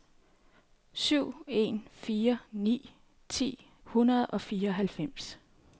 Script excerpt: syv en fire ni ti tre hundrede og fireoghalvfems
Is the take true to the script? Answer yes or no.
no